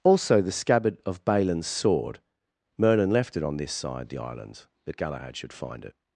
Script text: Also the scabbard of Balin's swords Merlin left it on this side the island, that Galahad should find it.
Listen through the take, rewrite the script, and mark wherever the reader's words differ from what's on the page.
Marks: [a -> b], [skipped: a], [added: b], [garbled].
Also the scabbard of Balin's [swords -> sword] Merlin left it on this side the island, that Galahad should find it.